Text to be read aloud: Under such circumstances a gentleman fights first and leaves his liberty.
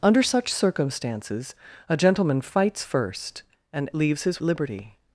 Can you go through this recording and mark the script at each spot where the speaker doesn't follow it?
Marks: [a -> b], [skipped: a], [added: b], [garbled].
Under such circumstances a gentleman fights first and leaves his liberty.